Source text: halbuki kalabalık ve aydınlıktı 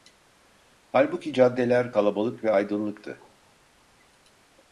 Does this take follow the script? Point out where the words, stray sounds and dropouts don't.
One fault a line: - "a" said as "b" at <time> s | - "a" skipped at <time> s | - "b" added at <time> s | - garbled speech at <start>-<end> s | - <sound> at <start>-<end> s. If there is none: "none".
- "caddeler" added at 1.3 s